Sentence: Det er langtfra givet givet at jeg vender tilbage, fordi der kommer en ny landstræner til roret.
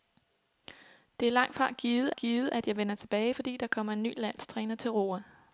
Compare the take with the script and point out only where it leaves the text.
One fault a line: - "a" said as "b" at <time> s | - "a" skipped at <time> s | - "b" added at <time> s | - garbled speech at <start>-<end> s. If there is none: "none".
none